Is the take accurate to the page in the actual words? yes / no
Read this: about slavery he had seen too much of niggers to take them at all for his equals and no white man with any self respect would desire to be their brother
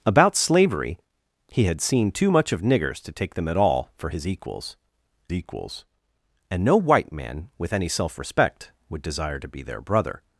no